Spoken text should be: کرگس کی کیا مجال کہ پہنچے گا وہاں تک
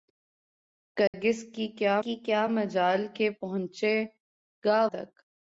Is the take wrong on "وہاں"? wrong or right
wrong